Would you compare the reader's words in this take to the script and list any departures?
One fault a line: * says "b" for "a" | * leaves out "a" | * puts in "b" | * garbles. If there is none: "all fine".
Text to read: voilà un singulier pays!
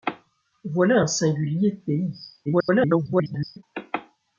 * garbles